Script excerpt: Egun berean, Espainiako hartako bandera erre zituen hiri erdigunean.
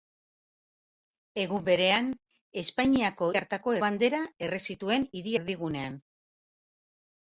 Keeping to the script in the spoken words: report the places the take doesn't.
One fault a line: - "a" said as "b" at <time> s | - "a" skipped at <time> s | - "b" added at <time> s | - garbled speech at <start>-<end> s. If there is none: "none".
none